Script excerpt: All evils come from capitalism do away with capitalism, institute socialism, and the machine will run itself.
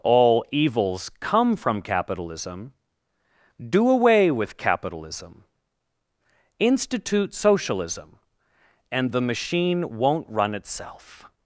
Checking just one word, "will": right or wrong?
wrong